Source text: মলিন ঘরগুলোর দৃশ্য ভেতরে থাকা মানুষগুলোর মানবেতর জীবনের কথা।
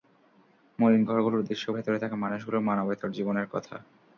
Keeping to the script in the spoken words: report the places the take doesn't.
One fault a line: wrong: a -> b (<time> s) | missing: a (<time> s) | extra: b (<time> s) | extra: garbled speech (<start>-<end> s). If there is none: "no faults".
no faults